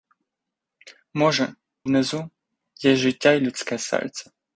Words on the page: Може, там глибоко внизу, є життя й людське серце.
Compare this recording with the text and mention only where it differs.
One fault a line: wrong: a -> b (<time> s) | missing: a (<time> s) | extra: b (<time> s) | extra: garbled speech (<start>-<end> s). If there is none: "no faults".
missing: там глибоко (1.5 s)